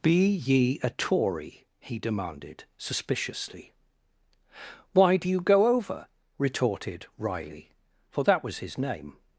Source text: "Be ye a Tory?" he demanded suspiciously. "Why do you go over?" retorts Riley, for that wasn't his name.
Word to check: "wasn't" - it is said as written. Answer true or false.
false